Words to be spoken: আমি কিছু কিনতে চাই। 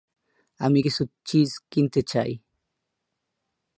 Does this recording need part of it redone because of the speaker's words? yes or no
yes